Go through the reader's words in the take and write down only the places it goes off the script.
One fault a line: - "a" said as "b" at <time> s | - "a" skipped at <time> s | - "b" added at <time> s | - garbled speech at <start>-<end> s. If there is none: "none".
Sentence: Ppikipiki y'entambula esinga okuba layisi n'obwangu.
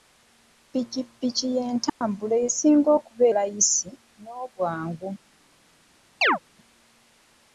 none